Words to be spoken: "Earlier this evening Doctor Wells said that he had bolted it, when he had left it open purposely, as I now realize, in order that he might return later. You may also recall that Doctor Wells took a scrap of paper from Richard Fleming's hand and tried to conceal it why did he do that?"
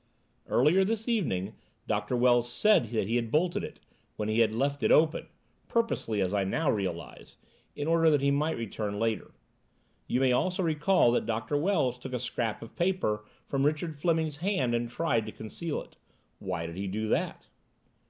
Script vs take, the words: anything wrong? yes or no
no